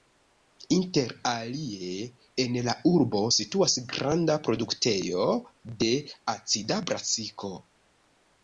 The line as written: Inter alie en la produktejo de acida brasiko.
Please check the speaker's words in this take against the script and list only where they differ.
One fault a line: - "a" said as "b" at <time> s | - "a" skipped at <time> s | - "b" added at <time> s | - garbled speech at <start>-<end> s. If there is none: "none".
- "urbo situas granda" added at 2.9 s